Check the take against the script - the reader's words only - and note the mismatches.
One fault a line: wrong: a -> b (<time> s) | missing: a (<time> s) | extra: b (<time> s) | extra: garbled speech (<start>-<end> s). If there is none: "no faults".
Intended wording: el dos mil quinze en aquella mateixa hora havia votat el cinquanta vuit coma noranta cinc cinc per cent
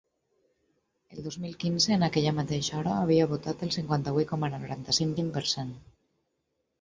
no faults